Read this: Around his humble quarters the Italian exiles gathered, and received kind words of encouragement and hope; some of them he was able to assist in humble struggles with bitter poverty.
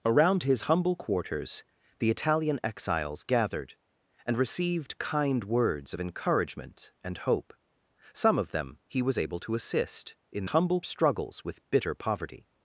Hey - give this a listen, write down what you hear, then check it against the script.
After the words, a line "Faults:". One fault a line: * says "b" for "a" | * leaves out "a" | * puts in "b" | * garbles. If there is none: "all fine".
Around his humble quarters the Italian exiles gathered, and received kind words of encouragement and hope; some of them he was able to assist in humble struggles with bitter poverty.
Faults:
all fine